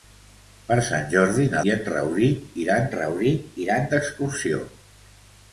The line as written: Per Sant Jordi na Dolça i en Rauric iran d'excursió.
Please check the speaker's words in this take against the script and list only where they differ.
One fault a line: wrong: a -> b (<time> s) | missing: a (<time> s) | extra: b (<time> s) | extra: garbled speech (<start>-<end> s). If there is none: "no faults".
missing: Dolça (1.6 s)
extra: Rauric iran (3.0 s)